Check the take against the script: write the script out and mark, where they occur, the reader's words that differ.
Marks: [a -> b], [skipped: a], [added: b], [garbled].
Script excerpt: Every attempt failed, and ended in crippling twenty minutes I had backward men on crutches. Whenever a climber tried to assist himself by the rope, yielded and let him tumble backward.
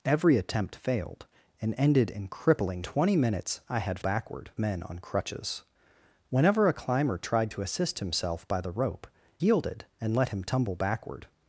Every attempt failed, and ended in crippling twenty minutes I had backward men on crutches. Whenever a climber tried to assist himself by the rope, yielded and let him tumble backward.